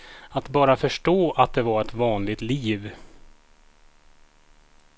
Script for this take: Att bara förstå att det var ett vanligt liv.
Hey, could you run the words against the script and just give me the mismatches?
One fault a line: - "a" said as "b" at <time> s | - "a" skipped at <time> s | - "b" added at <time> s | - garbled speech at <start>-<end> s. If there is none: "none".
none